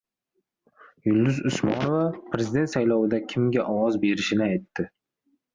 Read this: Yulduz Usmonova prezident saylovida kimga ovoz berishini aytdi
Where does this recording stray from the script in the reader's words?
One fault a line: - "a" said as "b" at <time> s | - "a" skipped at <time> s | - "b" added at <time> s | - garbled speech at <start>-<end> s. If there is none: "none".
none